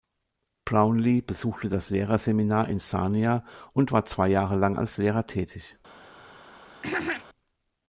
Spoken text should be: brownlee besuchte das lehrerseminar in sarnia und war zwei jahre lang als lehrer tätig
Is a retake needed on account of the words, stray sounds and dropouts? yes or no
yes